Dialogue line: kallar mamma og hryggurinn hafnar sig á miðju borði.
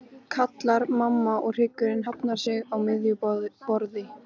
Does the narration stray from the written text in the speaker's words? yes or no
no